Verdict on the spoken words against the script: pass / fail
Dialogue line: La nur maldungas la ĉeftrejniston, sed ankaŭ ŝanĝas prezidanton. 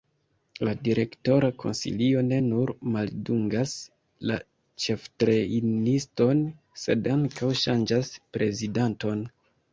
fail